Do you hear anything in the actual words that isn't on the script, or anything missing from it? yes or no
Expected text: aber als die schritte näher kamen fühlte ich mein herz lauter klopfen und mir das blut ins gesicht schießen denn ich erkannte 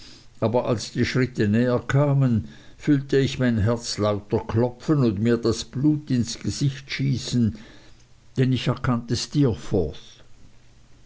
no